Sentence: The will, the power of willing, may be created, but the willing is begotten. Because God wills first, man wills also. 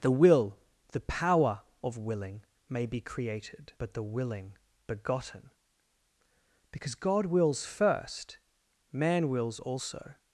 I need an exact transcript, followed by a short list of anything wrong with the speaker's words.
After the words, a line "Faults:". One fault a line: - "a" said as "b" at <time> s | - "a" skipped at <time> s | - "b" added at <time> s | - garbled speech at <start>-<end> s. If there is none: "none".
The will, the power of willing, may be created, but the willing begotten. Because God wills first, man wills also.
Faults:
- "is" skipped at 4.6 s